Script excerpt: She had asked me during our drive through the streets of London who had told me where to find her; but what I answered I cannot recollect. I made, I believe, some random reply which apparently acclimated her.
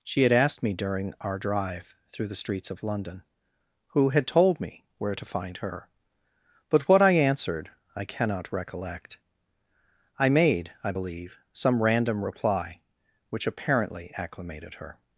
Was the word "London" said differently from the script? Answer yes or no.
no